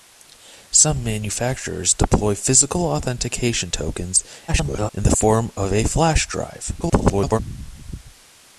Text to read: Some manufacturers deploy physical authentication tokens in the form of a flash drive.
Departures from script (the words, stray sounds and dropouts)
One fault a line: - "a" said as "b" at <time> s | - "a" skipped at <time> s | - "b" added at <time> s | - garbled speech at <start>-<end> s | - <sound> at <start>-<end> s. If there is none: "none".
- garbled speech at 4.5-4.9 s
- garbled speech at 6.8-7.4 s